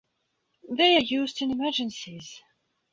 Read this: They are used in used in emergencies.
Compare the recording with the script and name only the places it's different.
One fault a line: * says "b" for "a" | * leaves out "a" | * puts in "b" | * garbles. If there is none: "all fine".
* leaves out "used in"